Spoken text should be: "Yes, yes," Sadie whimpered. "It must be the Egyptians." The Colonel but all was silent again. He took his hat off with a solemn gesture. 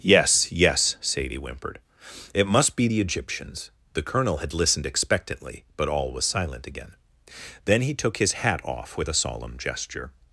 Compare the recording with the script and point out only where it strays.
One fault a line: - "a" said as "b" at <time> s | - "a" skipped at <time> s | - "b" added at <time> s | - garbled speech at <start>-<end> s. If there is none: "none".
- "had listened expectantly" added at 4.4 s
- "Then" added at 7.6 s